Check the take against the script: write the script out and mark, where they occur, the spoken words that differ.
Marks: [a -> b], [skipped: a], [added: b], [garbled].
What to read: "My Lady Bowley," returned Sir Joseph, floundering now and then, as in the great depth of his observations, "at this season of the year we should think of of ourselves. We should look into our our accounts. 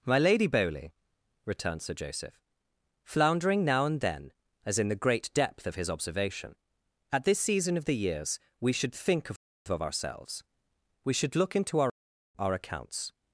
"My Lady Bowley," returned Sir Joseph, floundering now and then, as in the great depth of his [observations, -> observation] "at this season of the [year -> years] we should think of of ourselves. We should look into our our accounts.